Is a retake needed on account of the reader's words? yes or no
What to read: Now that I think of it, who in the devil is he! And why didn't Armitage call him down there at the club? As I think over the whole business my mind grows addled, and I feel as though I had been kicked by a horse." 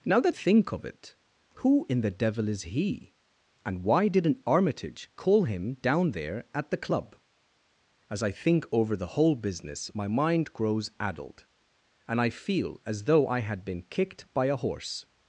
yes